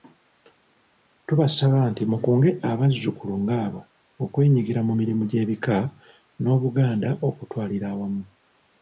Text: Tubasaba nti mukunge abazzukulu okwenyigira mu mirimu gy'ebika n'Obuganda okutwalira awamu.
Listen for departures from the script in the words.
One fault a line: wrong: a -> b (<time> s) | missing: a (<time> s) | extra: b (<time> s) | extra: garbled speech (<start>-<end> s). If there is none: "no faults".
extra: ng'abo (3.4 s)